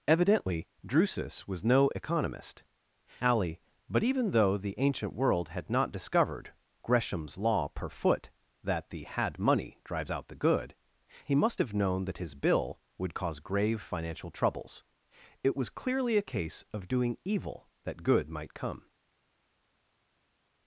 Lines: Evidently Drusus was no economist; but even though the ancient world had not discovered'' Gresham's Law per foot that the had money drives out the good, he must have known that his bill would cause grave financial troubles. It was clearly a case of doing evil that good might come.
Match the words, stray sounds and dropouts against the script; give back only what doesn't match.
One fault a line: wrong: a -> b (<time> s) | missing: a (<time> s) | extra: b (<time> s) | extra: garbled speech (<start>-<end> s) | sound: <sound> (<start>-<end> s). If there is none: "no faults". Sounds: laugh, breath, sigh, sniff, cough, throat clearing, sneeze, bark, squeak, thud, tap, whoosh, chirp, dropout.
extra: alley (3.2 s)